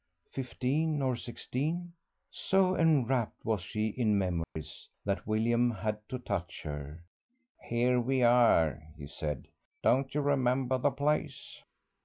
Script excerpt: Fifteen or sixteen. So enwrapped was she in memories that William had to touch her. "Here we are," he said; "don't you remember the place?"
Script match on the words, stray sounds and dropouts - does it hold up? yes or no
no